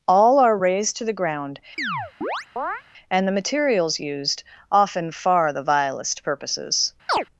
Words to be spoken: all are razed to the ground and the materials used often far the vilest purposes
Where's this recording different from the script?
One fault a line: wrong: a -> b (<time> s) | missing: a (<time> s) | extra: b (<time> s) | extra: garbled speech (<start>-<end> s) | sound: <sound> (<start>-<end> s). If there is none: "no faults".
sound: chirp (1.8-2.8 s)
sound: chirp (7.1-7.2 s)